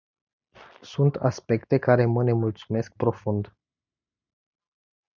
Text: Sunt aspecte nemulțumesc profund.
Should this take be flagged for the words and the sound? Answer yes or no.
yes